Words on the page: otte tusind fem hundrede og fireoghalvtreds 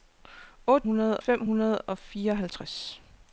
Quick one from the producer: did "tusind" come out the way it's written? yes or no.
no